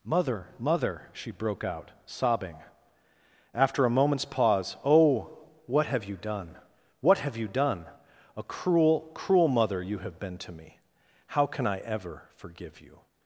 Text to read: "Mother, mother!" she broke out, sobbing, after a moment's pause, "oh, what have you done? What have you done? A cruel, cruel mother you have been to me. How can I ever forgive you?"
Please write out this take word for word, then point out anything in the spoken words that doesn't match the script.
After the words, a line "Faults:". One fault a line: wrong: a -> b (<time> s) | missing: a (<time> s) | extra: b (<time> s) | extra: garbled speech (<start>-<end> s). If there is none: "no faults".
"Mother, mother!" she broke out, sobbing, after a moment's pause, "oh, what have you done? What have you done? A cruel, cruel mother you have been to me. How can I ever forgive you?"
Faults:
no faults